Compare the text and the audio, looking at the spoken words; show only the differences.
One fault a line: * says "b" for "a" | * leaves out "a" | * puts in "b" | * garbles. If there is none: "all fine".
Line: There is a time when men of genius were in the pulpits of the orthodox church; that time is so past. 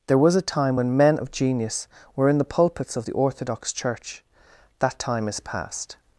* says "was" for "is"
* leaves out "so"